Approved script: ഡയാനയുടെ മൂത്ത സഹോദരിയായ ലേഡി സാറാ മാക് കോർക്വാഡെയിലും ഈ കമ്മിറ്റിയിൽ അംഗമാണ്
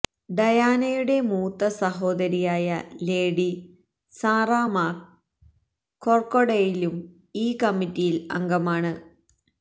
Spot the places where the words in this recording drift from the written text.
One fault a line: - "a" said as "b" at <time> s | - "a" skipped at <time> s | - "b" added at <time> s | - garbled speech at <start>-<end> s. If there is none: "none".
none